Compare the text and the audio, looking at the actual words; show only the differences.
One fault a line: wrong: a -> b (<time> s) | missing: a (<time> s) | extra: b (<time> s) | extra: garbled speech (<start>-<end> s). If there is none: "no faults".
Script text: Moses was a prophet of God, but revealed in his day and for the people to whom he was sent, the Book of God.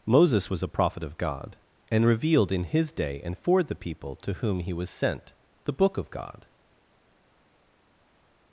wrong: but -> and (1.9 s)